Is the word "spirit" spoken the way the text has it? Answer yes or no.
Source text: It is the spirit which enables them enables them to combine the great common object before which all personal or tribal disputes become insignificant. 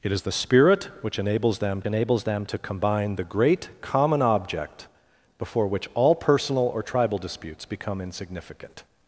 yes